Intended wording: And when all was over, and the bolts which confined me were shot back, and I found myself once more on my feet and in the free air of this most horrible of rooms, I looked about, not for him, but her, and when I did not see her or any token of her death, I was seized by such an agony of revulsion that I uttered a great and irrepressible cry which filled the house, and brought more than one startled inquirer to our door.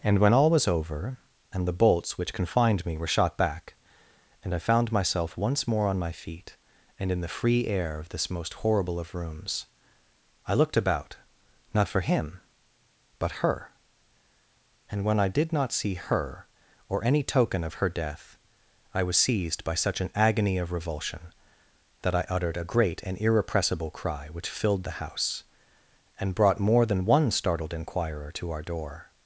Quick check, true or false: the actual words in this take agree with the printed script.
true